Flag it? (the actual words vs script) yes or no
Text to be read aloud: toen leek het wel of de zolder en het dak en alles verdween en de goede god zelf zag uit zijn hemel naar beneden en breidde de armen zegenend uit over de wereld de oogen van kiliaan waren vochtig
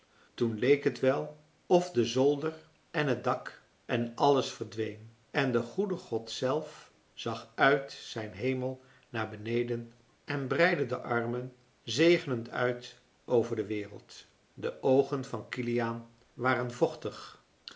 no